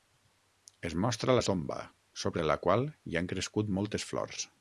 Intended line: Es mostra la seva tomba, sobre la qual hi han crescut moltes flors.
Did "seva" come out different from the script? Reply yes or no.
yes